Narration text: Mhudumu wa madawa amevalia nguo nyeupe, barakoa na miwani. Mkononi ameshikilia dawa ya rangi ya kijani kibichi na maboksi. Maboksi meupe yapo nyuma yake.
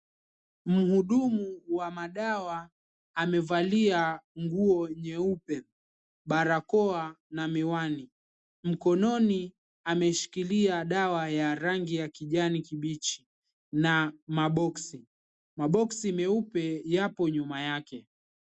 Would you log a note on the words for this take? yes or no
no